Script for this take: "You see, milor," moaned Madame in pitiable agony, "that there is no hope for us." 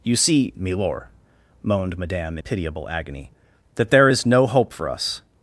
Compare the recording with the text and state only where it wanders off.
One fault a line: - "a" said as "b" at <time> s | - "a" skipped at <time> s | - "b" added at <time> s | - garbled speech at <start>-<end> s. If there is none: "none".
- "in" skipped at 2.4 s